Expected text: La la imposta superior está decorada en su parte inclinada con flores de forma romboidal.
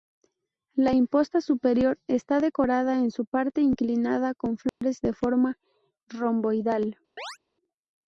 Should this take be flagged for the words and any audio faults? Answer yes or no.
yes